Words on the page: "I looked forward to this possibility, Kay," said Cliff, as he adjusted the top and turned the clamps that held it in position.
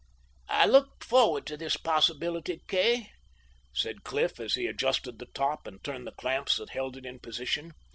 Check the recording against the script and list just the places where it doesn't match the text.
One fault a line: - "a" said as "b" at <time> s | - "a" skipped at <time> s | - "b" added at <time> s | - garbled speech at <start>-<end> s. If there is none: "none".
none